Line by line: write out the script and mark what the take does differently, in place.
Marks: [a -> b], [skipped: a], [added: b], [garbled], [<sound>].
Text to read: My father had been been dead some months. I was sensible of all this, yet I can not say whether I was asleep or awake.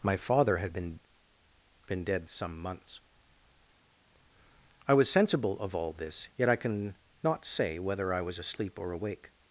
My father had been been dead some months. I was sensible of all this, yet I can not say whether I was asleep or awake.